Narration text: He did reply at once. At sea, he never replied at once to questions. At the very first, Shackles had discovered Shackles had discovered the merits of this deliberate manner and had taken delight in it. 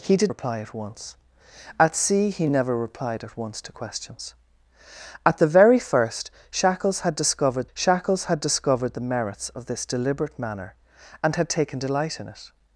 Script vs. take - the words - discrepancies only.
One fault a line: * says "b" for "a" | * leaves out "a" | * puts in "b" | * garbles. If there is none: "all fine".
all fine